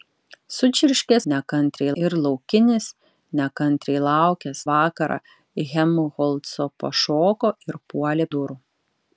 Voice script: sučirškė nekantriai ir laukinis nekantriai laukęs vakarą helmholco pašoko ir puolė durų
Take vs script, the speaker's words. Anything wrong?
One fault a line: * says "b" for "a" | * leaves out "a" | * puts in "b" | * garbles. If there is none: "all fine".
all fine